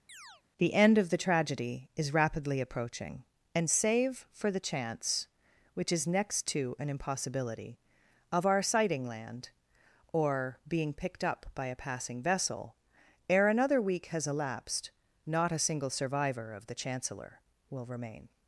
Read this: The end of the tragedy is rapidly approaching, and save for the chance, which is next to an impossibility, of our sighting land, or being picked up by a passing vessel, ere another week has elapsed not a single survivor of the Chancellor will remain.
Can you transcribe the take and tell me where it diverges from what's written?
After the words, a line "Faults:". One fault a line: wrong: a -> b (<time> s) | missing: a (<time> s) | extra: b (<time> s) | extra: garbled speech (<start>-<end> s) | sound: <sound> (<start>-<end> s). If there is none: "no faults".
The end of the tragedy is rapidly approaching, and save for the chance, which is next to an impossibility, of our sighting land, or being picked up by a passing vessel, ere another week has elapsed not a single survivor of the Chancellor will remain.
Faults:
sound: chirp (0.1-0.4 s)